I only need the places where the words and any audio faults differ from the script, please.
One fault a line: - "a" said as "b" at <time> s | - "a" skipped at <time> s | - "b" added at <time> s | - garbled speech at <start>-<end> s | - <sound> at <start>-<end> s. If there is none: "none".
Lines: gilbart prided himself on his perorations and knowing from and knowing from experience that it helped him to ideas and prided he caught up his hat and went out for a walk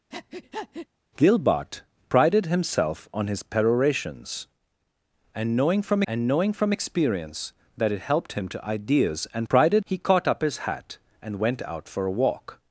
- breath at 0.1-0.9 s